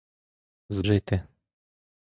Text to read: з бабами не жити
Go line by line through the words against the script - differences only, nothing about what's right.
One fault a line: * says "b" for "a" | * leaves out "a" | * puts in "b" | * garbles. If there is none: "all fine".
* leaves out "бабами не"